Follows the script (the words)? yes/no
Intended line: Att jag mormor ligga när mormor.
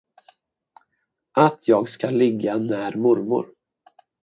no